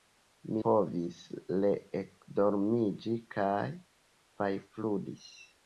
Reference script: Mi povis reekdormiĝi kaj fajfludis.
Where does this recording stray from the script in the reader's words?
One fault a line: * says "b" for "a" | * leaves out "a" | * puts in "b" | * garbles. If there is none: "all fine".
all fine